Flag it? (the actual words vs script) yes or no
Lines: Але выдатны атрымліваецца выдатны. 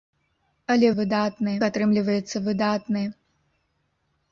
no